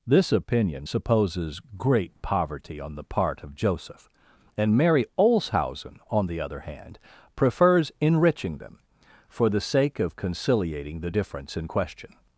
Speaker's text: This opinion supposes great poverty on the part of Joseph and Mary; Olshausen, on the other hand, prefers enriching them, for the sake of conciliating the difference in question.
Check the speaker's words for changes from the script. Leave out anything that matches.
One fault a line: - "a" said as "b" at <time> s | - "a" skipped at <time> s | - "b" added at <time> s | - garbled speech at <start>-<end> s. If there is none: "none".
none